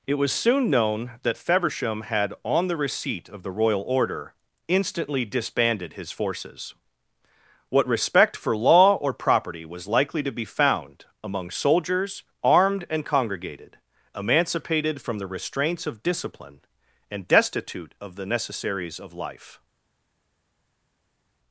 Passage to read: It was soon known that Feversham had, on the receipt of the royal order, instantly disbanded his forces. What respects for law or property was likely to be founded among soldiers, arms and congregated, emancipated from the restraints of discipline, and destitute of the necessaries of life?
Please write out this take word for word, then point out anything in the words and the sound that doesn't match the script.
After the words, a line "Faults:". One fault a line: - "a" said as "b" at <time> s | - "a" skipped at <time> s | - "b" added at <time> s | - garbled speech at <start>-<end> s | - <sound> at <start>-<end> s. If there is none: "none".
It was soon known that Feversham had, on the receipt of the royal order, instantly disbanded his forces. What respect for law or property was likely to be found among soldiers, armed and congregated, emancipated from the restraints of discipline, and destitute of the necessaries of life?
Faults:
- "respects" said as "respect" at 7.9 s
- "founded" said as "found" at 10.4 s
- "arms" said as "armed" at 12.4 s